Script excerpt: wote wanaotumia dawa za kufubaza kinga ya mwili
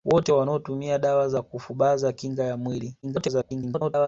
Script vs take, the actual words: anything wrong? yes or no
yes